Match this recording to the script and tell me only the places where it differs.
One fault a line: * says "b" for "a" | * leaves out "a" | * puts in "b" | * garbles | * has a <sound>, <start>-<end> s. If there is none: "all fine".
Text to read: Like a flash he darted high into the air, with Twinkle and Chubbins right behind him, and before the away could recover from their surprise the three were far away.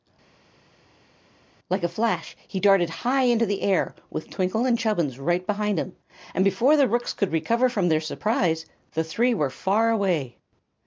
* says "rooks" for "away"